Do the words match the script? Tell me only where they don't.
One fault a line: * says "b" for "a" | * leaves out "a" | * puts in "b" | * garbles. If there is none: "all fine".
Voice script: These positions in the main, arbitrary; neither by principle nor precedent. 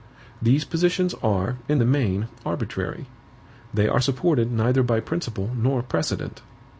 * puts in "are"
* puts in "they are supported"